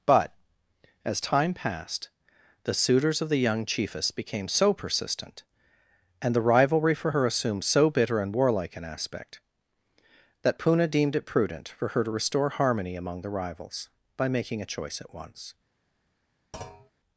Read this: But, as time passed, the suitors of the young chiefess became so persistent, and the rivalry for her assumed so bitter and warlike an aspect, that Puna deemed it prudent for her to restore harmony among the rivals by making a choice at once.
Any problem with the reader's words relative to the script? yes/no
no